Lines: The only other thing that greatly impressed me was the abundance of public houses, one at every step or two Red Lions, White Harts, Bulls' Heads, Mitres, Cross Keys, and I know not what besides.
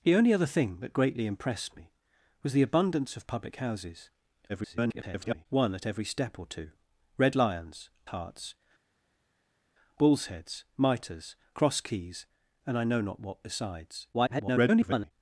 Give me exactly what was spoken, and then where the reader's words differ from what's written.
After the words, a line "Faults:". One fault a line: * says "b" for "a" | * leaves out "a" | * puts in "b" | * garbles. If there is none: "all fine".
The only other thing that greatly impressed me was the abundance of public houses, [garbled] one at every step or two Red Lions, Harts, Bulls' Heads, Mitres, Cross Keys, and I know not what besides. [garbled]
Faults:
* garbles
* leaves out "White"
* garbles